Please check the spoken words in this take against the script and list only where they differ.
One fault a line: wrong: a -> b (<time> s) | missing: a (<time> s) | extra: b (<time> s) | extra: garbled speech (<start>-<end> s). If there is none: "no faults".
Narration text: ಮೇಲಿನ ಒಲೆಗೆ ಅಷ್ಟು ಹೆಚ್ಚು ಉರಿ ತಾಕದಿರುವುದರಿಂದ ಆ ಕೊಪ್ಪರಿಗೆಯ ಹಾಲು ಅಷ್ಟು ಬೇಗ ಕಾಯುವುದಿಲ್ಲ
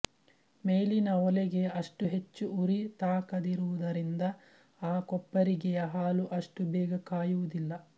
no faults